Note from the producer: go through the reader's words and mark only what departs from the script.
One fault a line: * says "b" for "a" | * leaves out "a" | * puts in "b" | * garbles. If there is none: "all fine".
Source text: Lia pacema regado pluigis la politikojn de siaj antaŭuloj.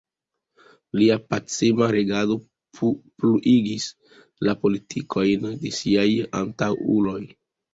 all fine